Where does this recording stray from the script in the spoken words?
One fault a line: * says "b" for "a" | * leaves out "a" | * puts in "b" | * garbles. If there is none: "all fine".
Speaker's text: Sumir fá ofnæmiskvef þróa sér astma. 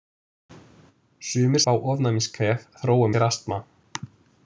all fine